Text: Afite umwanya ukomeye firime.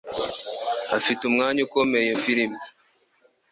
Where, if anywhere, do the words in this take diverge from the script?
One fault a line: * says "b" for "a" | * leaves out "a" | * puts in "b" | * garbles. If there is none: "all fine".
all fine